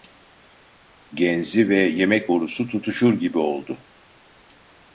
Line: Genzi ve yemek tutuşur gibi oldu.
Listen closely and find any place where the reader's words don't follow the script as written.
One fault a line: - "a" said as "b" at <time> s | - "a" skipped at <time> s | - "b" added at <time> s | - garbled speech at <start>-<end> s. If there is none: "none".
- "borusu" added at 2.3 s